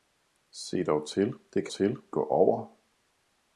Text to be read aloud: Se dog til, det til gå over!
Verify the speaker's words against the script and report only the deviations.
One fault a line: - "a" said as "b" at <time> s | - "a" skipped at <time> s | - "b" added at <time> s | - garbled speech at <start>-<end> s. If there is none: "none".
none